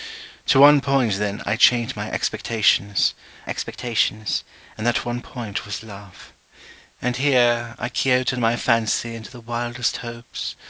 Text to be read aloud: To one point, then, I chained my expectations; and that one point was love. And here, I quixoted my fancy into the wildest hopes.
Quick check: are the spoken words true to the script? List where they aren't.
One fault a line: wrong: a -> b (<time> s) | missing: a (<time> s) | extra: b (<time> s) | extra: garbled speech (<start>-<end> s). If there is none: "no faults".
extra: expectations (3.4 s)